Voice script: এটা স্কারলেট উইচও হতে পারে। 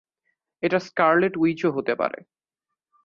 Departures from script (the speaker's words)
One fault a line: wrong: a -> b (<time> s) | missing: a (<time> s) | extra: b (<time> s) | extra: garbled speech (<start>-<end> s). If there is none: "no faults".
no faults